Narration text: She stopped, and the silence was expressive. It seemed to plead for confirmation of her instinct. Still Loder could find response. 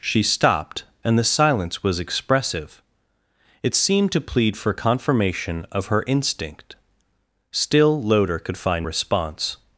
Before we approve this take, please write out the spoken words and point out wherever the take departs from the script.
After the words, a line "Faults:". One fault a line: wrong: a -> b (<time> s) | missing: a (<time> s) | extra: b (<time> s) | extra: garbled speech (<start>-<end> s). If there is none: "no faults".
She stopped, and the silence was expressive. It seemed to plead for confirmation of her instinct. Still Loder could find response.
Faults:
no faults